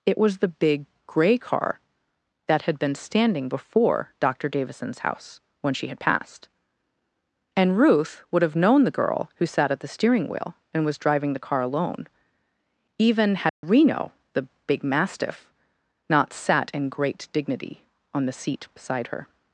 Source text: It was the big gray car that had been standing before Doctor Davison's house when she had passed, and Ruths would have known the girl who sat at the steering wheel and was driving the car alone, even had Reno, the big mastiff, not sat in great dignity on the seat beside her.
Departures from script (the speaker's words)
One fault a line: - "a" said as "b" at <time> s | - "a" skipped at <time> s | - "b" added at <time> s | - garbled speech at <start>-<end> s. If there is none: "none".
- "Ruths" said as "Ruth" at 7.8 s